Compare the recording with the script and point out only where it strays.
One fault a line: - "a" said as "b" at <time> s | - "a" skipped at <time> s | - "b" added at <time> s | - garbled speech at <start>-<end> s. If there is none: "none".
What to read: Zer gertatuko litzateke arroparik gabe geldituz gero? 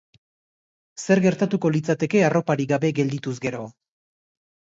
none